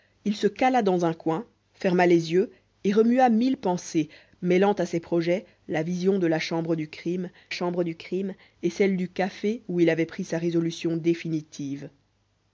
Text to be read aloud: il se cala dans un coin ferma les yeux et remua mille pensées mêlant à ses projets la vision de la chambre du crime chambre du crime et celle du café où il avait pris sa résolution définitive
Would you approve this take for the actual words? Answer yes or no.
yes